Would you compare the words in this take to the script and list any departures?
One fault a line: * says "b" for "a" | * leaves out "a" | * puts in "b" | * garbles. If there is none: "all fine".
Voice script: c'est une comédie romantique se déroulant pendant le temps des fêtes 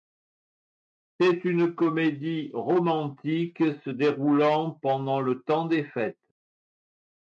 all fine